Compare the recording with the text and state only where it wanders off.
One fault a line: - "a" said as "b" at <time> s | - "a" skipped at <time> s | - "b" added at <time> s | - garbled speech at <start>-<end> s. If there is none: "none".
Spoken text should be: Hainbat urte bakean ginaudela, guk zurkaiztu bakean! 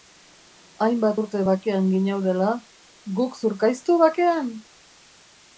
none